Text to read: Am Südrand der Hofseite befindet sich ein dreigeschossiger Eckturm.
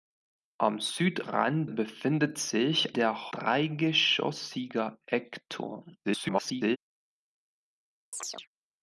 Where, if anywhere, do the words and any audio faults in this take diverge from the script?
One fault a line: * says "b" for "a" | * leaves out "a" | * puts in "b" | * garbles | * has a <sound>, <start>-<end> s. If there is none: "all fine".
* leaves out "der Hofseite"
* says "der" for "ein"
* garbles
* has a chirp, 8.1-8.5 s